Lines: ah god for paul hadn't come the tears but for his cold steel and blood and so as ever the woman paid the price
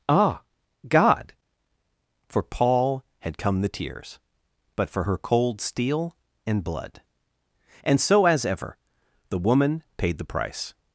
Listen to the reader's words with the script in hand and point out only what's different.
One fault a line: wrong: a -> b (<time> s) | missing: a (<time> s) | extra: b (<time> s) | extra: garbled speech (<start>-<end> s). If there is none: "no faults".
wrong: hadn't -> had (3.2 s)
wrong: his -> her (5.0 s)